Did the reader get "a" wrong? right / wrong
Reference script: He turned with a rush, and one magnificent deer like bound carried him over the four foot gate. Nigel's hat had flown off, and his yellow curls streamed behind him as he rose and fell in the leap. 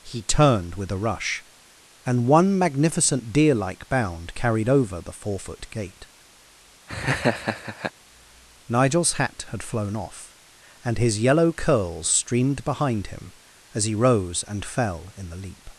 right